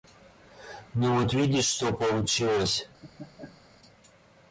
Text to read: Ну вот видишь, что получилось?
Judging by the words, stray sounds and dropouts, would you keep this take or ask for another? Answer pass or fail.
fail